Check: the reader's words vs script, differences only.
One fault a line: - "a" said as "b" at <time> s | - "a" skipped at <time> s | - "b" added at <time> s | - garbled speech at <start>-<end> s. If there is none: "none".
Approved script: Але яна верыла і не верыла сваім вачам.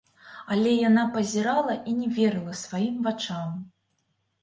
- "верыла" said as "пазірала" at 1.2 s